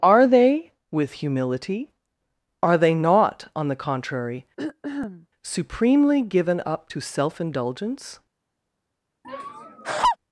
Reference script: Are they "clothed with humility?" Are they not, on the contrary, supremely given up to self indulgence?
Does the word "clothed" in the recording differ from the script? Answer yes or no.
yes